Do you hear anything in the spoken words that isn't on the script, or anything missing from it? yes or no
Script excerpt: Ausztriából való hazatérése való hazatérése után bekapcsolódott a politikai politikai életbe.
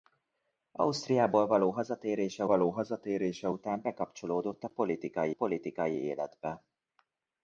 no